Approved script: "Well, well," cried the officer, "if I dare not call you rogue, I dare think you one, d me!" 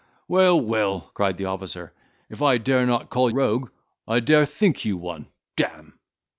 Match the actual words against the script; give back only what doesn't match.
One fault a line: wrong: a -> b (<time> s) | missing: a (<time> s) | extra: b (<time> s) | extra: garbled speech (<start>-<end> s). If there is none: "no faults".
missing: you (3.3 s)